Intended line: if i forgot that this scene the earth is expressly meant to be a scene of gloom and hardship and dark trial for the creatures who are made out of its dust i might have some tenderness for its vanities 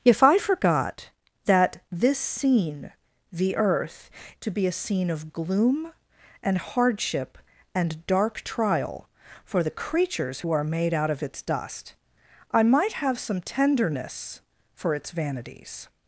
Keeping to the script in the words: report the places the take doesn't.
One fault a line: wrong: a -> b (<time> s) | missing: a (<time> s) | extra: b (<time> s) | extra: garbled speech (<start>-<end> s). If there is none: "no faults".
missing: is expressly meant (4.1 s)